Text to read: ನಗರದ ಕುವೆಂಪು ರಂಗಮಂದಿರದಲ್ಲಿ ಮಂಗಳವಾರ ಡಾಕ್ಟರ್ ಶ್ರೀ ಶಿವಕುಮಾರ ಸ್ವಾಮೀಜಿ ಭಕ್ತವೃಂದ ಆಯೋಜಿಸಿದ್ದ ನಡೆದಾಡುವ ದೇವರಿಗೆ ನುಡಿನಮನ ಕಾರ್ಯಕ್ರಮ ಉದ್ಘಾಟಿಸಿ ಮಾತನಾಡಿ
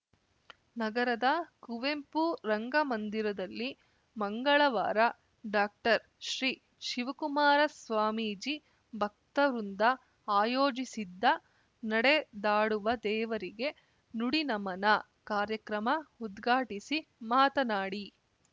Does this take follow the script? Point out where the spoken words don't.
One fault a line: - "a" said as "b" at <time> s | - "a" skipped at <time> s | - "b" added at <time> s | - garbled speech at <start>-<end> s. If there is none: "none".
none